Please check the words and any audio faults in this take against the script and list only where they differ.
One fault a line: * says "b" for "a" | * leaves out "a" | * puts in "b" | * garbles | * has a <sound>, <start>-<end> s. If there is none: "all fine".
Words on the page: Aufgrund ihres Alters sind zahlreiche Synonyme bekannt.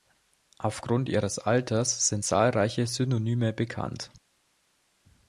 all fine